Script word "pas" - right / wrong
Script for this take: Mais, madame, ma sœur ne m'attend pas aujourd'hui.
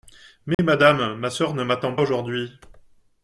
wrong